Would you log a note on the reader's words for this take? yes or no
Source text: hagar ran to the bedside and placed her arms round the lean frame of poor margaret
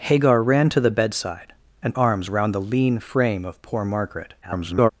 yes